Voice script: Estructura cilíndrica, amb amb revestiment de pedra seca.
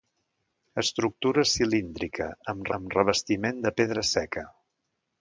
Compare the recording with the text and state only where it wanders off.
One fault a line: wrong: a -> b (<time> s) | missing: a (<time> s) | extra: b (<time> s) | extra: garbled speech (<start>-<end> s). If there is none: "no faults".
no faults